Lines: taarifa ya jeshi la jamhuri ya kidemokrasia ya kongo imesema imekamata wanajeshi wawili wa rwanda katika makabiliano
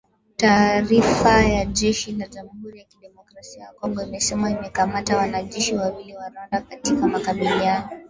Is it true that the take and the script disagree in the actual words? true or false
false